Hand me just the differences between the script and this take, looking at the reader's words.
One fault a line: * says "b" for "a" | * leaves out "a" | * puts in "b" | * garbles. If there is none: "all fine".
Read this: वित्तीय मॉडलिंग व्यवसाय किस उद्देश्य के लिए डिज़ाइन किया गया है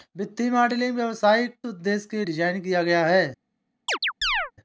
* leaves out "किस"
* leaves out "लिए"